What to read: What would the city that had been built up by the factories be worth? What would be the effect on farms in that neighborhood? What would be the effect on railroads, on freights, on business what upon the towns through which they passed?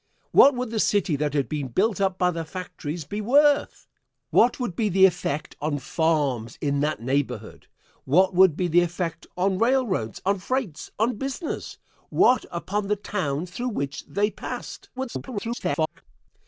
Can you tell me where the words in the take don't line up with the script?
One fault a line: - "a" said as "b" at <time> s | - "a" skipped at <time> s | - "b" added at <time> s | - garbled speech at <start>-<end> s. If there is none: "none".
- garbled speech at 15.0-16.0 s